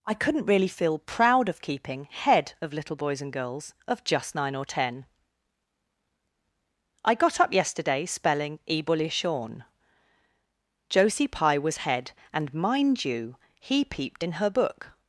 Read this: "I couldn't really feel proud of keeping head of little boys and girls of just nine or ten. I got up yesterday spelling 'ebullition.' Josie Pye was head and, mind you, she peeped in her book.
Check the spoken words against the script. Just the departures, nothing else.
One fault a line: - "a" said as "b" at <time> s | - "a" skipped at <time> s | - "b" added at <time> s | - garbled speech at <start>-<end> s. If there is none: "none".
- "she" said as "he" at 13.6 s